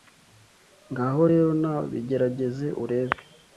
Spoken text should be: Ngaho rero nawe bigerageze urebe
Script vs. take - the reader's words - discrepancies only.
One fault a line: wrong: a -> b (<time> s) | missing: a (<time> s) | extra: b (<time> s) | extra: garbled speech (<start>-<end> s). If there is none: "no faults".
no faults